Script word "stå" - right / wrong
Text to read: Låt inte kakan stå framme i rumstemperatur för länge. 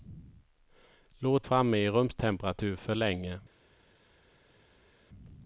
wrong